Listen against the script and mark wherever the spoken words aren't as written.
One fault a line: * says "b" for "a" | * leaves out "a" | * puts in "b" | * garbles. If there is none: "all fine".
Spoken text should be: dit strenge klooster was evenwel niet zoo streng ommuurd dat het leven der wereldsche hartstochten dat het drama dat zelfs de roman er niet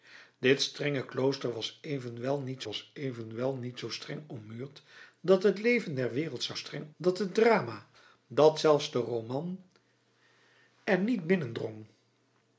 * puts in "was evenwel niet"
* says "streng" for "hartstochten"